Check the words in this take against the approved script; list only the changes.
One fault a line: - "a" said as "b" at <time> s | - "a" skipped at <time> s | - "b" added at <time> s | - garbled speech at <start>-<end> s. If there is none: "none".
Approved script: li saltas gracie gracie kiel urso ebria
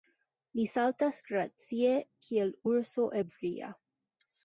- "gracie" skipped at 1.9 s